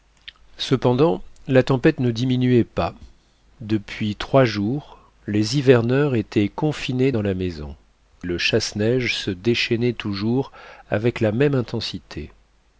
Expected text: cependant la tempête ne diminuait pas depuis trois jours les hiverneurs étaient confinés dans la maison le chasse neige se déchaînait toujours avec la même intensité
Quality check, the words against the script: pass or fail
pass